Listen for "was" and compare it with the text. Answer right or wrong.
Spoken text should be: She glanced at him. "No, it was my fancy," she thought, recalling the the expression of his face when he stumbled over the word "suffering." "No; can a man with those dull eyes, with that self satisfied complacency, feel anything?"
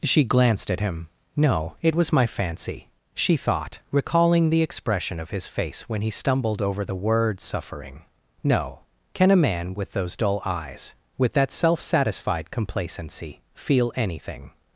right